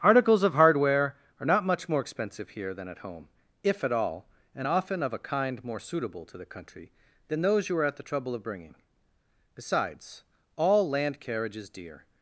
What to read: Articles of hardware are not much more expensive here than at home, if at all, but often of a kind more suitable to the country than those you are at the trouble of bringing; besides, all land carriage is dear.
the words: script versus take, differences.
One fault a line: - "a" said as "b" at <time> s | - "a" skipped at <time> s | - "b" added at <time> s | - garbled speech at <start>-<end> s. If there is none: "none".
- "but" said as "and" at 4.5 s